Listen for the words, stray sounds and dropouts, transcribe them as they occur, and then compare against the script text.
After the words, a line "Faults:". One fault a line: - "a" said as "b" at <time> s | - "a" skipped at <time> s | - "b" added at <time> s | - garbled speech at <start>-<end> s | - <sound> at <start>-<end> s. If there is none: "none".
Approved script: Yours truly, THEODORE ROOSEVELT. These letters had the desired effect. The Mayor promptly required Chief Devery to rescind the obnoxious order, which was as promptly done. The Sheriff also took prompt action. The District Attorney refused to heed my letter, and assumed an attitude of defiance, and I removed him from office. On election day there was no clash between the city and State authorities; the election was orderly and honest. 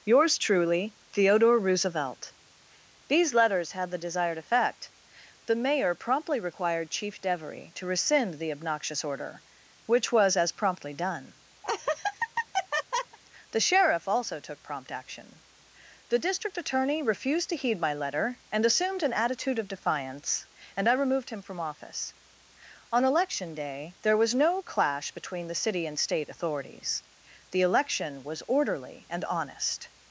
Yours truly, THEODORE ROOSEVELT. These letters had the desired effect. The Mayor promptly required Chief Devery to rescind the obnoxious order, which was as promptly done. The Sheriff also took prompt action. The District Attorney refused to heed my letter, and assumed an attitude of defiance, and I removed him from office. On election day there was no clash between the city and State authorities; the election was orderly and honest.
Faults:
- laugh at 11.6-13.2 s